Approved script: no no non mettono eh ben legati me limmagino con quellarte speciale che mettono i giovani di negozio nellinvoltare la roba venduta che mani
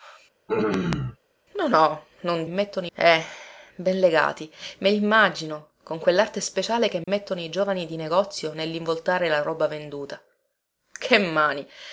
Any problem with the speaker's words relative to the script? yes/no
no